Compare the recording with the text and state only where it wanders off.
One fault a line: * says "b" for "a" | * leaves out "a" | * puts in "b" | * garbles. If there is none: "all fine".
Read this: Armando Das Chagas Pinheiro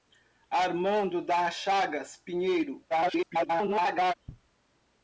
* garbles